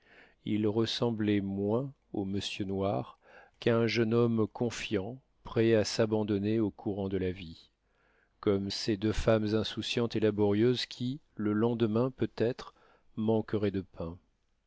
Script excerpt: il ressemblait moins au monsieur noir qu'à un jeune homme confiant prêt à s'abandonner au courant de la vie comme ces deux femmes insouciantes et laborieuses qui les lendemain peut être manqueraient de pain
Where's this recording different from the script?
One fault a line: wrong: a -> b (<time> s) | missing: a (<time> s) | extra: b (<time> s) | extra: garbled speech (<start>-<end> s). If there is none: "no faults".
wrong: les -> le (11.3 s)